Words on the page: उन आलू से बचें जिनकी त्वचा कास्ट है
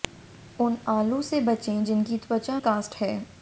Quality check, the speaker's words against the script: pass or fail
pass